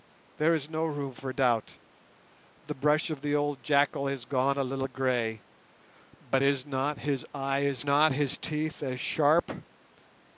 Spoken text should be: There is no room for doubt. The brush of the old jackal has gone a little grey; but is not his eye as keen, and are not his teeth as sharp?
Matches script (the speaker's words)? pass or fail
fail